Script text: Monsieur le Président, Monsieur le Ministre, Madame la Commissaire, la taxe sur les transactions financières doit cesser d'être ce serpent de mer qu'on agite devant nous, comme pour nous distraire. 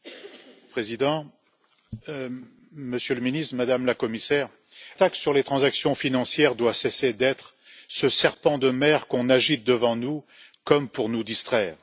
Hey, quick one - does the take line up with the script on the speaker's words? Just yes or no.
no